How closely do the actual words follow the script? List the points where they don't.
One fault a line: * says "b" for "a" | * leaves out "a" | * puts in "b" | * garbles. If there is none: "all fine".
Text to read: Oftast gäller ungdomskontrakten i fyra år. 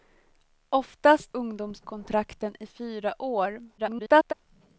* leaves out "gäller"
* garbles